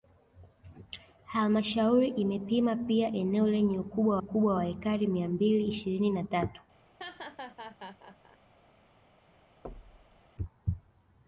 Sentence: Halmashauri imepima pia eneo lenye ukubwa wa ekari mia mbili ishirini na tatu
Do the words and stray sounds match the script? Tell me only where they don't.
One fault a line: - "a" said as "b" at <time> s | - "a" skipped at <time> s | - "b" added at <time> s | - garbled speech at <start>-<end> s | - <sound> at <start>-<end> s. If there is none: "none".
- "ukubwa" added at 4.2 s
- laugh at 7.0-8.4 s
- thud at 9.6-10.2 s